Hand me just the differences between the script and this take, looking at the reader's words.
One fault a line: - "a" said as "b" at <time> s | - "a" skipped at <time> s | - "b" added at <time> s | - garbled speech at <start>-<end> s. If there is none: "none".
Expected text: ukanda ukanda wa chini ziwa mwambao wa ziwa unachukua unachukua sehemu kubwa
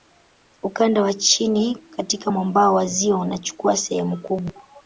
- "ukanda" skipped at 1.0 s
- "ziwa" said as "katika" at 1.9 s
- "unachukua" skipped at 3.8 s